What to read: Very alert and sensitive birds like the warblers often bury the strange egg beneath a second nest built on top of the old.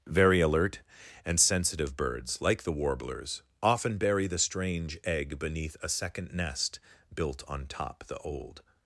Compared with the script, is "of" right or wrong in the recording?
wrong